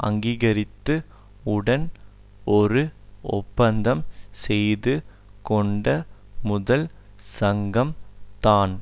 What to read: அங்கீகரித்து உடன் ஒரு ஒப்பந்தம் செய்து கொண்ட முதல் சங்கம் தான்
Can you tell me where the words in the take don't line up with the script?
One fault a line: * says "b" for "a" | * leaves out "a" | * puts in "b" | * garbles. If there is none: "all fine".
all fine